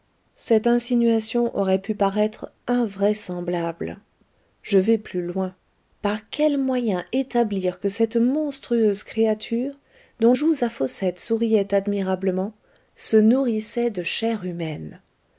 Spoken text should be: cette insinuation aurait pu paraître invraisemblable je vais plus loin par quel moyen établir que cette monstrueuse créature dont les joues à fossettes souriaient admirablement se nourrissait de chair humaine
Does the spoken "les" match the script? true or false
false